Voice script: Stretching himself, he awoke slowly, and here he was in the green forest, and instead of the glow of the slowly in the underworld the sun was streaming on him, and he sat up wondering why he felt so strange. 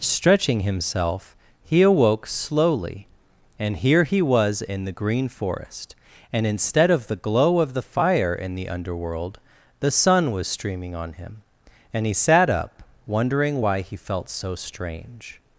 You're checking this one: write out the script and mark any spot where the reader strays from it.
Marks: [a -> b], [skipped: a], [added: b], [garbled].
Stretching himself, he awoke slowly, and here he was in the green forest, and instead of the glow of the [slowly -> fire] in the underworld the sun was streaming on him, and he sat up wondering why he felt so strange.